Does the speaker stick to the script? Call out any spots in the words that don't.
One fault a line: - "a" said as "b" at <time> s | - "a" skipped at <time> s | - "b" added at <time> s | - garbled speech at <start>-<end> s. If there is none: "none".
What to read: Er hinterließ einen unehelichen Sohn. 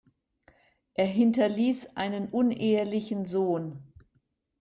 none